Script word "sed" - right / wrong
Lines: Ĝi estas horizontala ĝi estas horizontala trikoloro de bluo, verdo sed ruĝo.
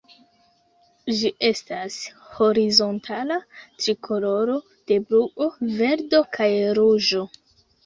wrong